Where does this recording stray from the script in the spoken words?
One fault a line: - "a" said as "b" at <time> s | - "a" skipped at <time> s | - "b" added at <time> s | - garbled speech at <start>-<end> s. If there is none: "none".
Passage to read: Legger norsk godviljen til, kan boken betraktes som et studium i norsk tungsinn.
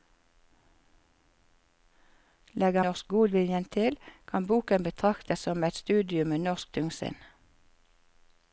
none